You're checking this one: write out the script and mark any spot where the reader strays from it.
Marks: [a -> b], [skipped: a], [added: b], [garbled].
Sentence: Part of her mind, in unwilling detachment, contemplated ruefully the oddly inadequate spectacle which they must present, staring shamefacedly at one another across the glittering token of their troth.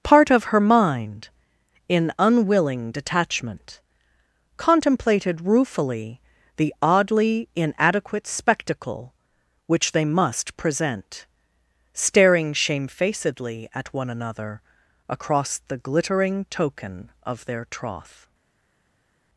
Part of her mind, in unwilling detachment, contemplated ruefully the oddly inadequate spectacle which they must present, staring shamefacedly at one another across the glittering token of their troth.